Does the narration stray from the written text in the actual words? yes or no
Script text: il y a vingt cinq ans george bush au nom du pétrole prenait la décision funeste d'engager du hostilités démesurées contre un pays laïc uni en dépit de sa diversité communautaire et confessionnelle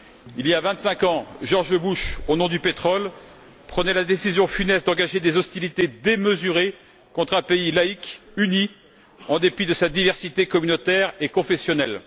yes